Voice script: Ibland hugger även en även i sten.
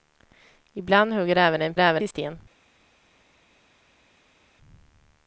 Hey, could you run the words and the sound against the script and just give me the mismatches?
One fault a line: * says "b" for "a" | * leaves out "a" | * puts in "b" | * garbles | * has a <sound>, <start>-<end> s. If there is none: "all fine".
all fine